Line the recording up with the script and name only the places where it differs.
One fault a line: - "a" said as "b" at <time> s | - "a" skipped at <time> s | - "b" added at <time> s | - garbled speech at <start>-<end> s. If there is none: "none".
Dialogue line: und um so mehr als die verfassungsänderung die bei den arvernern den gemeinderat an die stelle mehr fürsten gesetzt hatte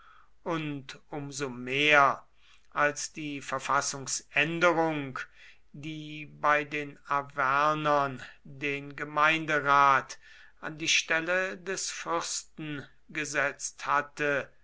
- "mehr" said as "des" at 11.6 s